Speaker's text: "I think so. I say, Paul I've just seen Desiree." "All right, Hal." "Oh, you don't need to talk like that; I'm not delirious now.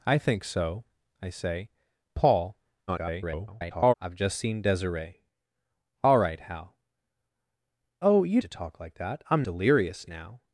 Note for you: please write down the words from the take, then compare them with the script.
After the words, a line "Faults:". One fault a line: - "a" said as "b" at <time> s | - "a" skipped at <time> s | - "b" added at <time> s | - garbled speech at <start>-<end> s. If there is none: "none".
"I think so. I say, Paul [garbled] I've just seen Desiree." "All right, Hal." "Oh, you to talk like that; I'm delirious now.
Faults:
- garbled speech at 2.9-3.9 s
- "don't need" skipped at 8.4 s
- "not" skipped at 9.4 s